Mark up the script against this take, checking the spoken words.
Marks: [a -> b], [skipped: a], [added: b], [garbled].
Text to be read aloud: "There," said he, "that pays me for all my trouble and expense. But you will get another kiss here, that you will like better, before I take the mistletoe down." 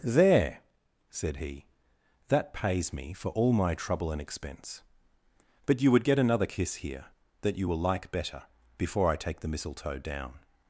"There," said he, "that pays me for all my trouble and expense. But you [will -> would] get another kiss here, that you will like better, before I take the mistletoe down."